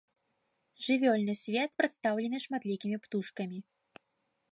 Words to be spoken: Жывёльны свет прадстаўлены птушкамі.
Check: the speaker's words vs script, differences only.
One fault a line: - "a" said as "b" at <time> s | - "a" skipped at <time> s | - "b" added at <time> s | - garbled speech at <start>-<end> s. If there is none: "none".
- "шматлікімі" added at 2.4 s